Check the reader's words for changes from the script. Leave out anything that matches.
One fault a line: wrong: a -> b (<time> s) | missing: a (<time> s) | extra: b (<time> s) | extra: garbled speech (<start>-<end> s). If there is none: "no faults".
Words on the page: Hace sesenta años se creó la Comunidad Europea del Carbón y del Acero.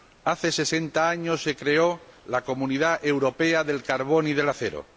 no faults